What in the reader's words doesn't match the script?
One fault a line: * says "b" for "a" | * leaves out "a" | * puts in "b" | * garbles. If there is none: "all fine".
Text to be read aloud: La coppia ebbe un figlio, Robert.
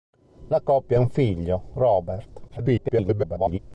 * leaves out "ebbe"
* garbles